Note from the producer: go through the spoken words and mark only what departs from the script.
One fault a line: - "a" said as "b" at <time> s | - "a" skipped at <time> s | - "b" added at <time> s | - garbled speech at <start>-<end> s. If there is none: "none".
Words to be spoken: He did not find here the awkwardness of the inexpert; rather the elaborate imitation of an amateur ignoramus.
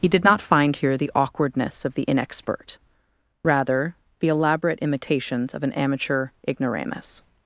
- "imitation" said as "imitations" at 4.8 s